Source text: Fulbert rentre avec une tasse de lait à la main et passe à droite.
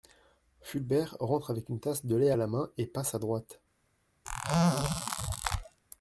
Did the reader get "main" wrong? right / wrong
right